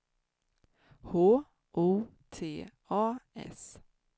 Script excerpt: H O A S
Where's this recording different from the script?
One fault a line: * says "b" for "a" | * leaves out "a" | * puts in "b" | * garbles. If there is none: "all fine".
* puts in "T"